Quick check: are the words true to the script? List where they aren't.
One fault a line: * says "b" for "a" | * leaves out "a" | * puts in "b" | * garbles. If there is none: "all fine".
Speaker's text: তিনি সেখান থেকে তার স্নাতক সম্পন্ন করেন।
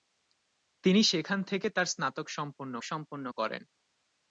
* puts in "সম্পন্ন"